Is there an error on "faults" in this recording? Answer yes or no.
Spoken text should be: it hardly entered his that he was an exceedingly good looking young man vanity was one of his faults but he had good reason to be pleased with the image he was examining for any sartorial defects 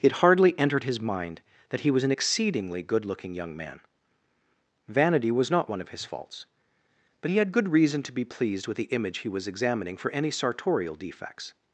no